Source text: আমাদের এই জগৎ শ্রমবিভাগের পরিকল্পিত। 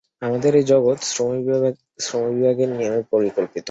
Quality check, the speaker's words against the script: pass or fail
fail